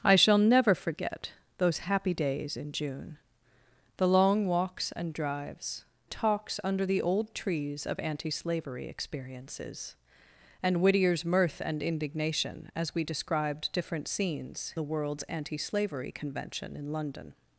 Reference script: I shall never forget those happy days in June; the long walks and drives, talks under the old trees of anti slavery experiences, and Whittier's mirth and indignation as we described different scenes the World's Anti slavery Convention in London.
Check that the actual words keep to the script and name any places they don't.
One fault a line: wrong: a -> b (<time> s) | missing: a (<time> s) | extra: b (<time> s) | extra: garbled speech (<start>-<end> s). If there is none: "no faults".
no faults